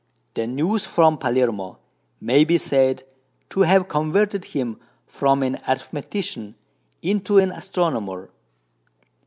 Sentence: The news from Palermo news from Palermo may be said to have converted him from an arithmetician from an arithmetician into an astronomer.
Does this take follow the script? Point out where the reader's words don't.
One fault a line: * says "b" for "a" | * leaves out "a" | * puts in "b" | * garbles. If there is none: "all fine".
* leaves out "news from Palermo"
* leaves out "from an arithmetician"